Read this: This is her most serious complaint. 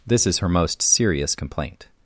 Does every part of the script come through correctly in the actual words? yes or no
yes